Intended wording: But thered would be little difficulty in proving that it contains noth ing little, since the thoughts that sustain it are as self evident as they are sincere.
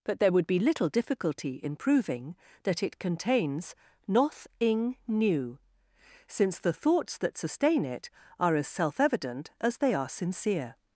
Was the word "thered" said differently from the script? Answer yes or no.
yes